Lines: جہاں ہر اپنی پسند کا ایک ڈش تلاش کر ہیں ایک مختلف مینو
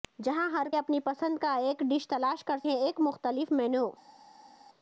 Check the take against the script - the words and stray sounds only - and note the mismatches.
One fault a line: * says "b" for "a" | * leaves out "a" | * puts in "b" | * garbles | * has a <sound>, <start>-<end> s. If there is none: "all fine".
all fine